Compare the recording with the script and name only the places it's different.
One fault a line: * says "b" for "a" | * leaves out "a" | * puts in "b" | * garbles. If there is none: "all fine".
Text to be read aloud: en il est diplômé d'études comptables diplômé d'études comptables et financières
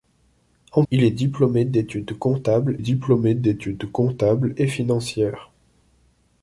all fine